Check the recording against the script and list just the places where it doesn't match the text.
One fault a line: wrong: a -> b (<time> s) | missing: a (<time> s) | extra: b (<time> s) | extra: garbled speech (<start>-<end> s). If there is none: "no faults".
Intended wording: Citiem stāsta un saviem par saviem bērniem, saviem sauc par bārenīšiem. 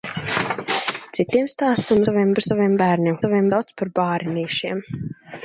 no faults